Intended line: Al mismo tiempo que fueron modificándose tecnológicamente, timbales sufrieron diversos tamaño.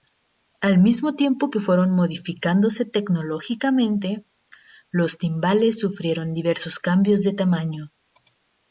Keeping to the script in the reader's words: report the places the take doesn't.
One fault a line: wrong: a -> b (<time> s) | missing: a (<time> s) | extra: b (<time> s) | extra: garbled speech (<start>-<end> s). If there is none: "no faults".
extra: los (4.9 s)
extra: cambios de (6.8 s)